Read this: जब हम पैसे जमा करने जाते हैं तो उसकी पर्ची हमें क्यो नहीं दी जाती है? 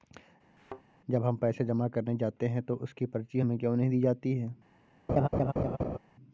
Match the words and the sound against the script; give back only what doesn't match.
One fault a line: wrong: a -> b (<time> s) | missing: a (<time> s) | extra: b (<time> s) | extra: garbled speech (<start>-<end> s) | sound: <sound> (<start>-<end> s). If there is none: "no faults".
sound: thud (0.6-0.8 s)
sound: laugh (5.1-6.0 s)